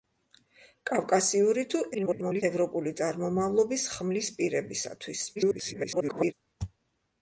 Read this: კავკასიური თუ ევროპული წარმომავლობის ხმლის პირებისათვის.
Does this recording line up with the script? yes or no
no